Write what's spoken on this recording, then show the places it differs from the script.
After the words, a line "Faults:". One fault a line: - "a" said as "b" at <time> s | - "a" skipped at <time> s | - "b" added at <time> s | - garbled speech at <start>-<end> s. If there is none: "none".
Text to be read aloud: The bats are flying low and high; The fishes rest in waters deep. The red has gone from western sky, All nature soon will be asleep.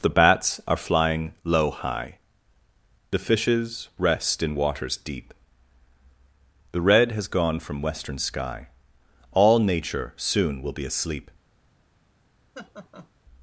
The bats are flying low high; The fishes rest in waters deep. The red has gone from western sky, All nature soon will be asleep.
Faults:
- "and" skipped at 1.7 s